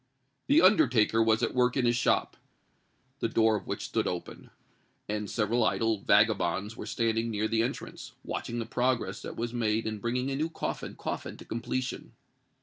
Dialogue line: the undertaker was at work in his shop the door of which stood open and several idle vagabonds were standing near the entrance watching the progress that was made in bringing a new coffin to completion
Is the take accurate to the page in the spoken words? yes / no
no